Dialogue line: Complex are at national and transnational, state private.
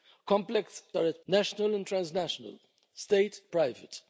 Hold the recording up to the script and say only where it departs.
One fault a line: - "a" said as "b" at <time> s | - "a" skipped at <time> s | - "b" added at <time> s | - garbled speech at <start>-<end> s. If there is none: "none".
none